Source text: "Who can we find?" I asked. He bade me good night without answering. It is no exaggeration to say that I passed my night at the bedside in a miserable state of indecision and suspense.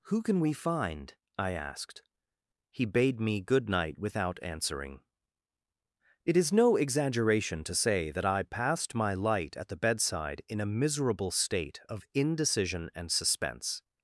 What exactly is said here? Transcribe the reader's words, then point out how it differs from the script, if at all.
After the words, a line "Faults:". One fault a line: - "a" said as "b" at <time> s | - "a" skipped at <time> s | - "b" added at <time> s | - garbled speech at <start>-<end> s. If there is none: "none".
"Who can we find?" I asked. He bade me good night without answering. It is no exaggeration to say that I passed my light at the bedside in a miserable state of indecision and suspense.
Faults:
- "night" said as "light" at 9.1 s